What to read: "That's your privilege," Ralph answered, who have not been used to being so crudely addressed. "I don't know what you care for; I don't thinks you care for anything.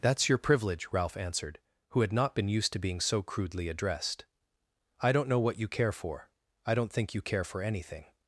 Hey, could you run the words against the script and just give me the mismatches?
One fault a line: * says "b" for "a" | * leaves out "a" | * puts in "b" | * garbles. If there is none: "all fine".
* says "had" for "have"
* says "think" for "thinks"